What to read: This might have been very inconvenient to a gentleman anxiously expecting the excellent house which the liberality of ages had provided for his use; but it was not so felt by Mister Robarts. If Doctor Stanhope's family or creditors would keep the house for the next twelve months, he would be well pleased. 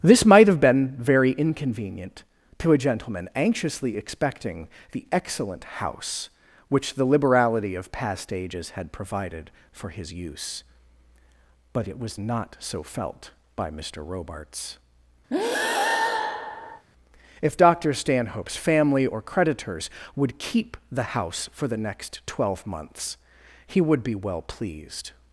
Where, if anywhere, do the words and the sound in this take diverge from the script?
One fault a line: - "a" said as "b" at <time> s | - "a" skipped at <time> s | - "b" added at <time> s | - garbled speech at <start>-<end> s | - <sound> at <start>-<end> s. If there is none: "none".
- "past" added at 7.9 s
- breath at 15.3-16.9 s